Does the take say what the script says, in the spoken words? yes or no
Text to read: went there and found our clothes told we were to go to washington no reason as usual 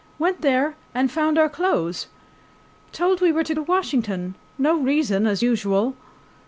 no